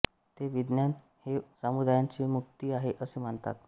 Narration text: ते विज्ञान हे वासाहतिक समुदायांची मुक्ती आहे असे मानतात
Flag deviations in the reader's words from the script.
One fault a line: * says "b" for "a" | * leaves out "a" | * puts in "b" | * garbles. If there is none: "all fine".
* leaves out "वासाहतिक"